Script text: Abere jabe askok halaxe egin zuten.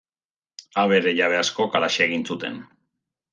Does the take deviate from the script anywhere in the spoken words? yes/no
no